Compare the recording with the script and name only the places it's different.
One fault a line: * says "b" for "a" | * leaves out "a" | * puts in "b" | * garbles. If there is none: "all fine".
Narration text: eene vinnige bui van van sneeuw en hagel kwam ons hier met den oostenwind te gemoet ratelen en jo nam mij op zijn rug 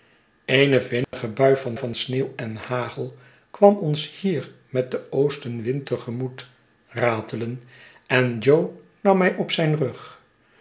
all fine